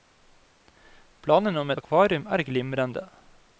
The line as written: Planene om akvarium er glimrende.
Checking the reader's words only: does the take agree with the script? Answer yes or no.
yes